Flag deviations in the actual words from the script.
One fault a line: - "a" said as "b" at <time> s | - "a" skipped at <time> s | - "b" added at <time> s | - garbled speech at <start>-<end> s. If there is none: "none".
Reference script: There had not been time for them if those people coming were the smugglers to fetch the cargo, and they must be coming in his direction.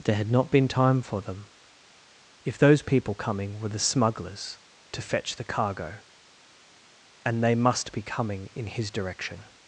none